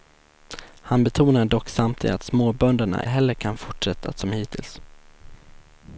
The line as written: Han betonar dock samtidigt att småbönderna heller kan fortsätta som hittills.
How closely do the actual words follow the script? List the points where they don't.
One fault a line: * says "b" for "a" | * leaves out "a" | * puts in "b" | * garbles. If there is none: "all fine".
all fine